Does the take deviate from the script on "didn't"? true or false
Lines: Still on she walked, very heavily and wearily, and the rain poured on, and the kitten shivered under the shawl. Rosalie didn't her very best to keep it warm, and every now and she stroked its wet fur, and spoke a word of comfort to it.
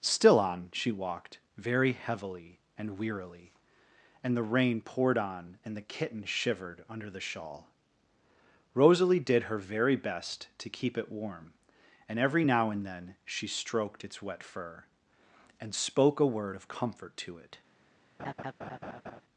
true